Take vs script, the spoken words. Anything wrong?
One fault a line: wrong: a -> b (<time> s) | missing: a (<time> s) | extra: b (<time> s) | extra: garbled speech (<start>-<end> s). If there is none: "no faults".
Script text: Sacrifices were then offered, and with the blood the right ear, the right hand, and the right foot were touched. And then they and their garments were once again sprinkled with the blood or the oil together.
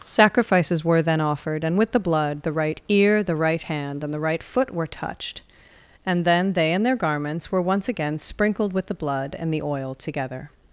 wrong: or -> and (9.4 s)